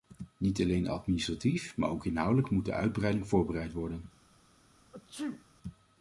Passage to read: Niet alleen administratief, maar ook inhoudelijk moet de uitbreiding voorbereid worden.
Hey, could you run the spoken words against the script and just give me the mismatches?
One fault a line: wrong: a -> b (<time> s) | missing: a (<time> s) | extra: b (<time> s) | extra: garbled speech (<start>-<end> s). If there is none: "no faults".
no faults